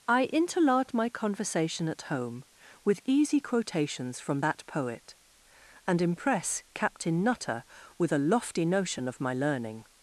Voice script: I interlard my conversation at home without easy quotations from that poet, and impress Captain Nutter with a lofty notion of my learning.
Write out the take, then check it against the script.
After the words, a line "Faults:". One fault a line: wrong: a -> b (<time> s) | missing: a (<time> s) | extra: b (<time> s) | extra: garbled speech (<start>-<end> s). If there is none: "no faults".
I interlard my conversation at home with easy quotations from that poet, and impress Captain Nutter with a lofty notion of my learning.
Faults:
wrong: without -> with (2.8 s)